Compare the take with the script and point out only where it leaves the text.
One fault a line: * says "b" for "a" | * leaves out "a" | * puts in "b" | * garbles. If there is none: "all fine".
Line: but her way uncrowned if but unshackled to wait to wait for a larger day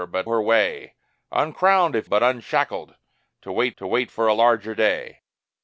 all fine